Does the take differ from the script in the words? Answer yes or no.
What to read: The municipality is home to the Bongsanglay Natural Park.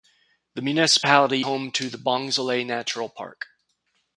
yes